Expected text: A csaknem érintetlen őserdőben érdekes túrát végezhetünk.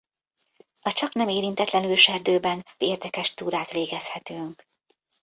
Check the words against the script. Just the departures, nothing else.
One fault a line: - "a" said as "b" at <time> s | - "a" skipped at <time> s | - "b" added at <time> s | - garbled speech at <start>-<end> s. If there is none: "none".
none